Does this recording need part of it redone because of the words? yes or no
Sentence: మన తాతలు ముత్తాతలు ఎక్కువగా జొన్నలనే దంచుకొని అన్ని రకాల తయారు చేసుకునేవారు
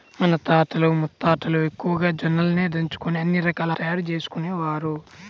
no